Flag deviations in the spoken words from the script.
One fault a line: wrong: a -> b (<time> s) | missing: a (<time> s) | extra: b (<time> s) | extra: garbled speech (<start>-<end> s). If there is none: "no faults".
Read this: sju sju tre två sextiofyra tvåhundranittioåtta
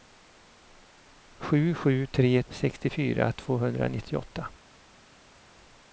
missing: två (2.4 s)